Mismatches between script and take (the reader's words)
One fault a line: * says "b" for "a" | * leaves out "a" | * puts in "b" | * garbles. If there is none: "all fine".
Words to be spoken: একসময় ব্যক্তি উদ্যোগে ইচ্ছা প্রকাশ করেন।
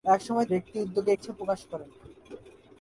all fine